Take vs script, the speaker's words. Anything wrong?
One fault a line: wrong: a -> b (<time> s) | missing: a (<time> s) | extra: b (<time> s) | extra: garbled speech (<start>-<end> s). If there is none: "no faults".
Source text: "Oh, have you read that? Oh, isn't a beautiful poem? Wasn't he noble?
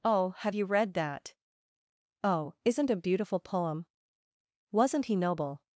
no faults